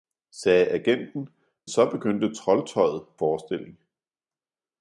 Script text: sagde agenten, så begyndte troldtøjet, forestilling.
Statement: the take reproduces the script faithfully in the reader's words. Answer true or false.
true